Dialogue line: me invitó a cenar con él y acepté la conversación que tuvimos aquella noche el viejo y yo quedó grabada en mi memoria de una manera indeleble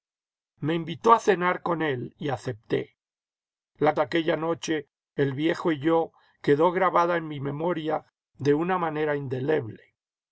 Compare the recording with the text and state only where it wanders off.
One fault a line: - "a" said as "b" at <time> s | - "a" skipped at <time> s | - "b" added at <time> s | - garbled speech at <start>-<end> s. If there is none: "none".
- "conversación que tuvimos" skipped at 3.9 s